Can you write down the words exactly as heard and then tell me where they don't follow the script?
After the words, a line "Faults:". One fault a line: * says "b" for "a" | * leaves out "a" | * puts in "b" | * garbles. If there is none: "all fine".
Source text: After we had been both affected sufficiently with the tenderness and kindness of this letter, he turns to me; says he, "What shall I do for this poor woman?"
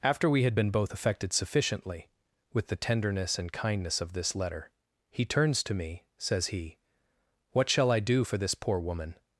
After we had been both affected sufficiently with the tenderness and kindness of this letter, he turns to me; says he, "What shall I do for this poor woman?"
Faults:
all fine